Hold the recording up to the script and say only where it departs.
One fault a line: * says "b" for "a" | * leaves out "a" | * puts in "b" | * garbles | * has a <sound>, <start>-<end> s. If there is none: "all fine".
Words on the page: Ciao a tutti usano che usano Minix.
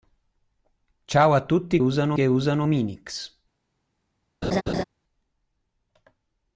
* has a laugh, 4.4-4.8 s